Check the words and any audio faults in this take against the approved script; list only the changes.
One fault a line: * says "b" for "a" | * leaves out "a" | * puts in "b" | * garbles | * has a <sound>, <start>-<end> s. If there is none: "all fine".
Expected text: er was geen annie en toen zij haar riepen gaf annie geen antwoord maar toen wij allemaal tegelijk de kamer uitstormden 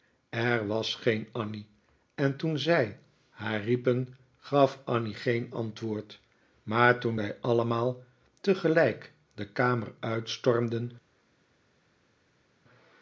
all fine